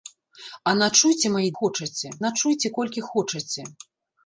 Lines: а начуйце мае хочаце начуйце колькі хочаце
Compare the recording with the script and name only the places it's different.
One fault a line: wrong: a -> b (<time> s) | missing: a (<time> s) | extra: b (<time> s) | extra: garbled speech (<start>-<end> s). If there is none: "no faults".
no faults